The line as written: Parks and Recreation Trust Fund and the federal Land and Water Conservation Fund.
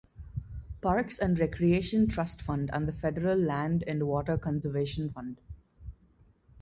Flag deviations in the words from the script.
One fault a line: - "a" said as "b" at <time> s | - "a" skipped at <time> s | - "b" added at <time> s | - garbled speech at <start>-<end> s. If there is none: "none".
none